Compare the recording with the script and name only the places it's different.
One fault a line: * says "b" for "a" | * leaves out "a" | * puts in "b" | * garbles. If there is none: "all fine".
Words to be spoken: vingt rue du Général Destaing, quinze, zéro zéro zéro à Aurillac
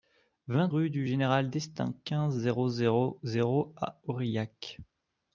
all fine